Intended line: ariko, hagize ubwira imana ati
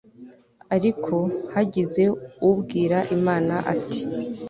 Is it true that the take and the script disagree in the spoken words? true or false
false